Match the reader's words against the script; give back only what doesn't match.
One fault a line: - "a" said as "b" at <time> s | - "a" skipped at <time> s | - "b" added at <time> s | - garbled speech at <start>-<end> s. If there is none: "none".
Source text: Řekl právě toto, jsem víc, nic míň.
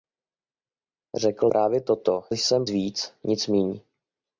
none